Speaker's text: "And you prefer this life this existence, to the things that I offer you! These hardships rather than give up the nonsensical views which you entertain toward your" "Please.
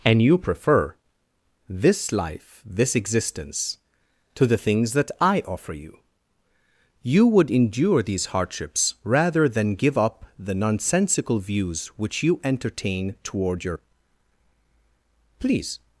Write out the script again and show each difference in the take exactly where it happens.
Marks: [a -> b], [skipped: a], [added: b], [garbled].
"And you prefer this life this existence, to the things that I offer you! [added: You would endure] These hardships rather than give up the nonsensical views which you entertain toward your" "Please.